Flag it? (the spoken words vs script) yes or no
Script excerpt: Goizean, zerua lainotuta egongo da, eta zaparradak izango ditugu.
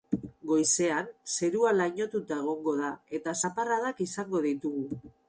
no